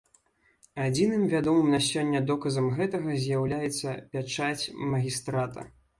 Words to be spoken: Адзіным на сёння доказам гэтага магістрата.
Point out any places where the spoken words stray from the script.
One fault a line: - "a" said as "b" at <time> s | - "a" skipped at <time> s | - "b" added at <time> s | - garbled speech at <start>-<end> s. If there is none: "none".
- "вядомым" added at 1.3 s
- "з'яўляецца пячаць" added at 3.2 s